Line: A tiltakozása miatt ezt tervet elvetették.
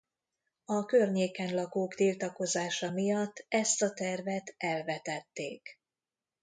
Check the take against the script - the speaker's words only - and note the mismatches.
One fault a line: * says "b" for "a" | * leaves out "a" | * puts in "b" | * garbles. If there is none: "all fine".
* puts in "környéken lakók"
* puts in "a"